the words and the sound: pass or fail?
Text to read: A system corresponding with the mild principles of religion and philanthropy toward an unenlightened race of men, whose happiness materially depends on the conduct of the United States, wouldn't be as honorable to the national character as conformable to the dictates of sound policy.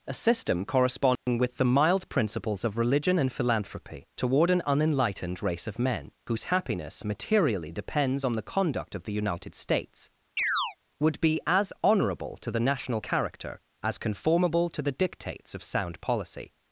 fail